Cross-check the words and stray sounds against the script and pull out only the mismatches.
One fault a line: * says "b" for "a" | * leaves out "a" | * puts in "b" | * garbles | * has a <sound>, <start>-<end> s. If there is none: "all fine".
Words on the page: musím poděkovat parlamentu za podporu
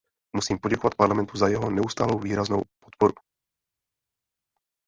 * puts in "jeho neustálou výraznou"